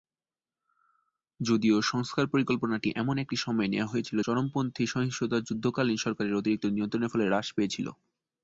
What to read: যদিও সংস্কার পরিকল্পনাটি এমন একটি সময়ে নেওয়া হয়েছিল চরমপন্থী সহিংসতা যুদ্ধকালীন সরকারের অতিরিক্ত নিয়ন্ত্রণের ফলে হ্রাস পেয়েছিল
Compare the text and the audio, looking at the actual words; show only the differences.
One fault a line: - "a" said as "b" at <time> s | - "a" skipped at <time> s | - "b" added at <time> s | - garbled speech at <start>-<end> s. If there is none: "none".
none